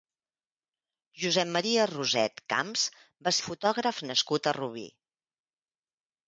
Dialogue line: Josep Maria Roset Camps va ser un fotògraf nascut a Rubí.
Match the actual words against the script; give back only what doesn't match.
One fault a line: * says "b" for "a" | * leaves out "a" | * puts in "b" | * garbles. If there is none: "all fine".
* leaves out "ser"